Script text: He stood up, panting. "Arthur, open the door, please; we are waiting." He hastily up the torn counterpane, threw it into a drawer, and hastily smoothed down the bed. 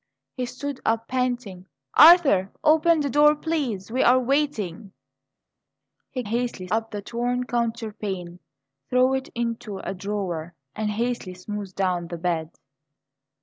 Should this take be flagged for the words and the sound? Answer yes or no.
no